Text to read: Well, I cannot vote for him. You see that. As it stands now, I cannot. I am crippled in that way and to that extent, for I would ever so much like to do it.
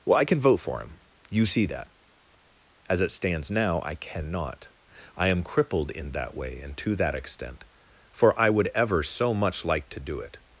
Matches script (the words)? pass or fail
fail